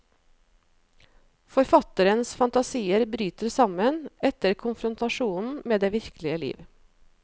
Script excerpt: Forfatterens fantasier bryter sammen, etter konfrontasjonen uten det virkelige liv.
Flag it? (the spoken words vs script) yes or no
yes